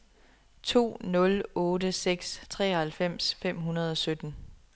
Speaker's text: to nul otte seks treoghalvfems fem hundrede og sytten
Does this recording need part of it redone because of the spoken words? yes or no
no